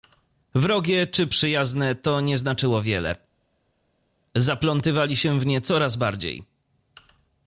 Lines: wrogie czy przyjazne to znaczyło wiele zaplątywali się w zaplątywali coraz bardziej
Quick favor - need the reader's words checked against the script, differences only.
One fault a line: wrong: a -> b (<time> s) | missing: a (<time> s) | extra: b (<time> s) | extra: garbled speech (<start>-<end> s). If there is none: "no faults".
extra: nie (2.2 s)
wrong: zaplątywali -> nie (5.5 s)